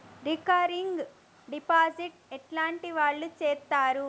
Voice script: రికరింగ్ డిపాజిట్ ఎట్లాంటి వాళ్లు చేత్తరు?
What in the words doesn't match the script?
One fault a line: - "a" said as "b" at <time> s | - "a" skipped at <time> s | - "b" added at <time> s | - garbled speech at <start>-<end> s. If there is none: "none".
none